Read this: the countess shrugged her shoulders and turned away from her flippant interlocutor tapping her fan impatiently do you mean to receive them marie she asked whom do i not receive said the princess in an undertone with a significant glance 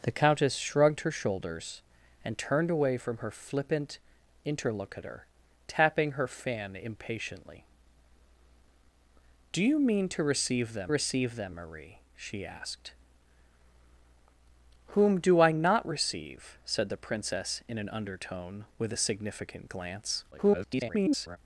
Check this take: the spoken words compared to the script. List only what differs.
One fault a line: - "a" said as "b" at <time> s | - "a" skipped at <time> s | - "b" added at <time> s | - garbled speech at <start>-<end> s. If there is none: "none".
- "receive them" added at 10.9 s
- garbled speech at 20.3-21.4 s